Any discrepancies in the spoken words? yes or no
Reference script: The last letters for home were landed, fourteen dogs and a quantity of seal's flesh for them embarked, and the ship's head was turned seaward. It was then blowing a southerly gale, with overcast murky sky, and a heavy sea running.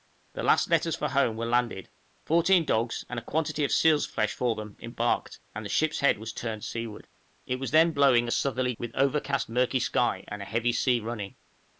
yes